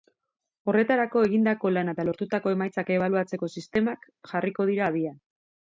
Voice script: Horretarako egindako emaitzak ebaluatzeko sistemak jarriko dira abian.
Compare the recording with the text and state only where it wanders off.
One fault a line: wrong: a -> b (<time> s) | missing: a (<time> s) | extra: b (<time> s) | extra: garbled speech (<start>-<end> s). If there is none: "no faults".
extra: lana eta lortutako (1.8 s)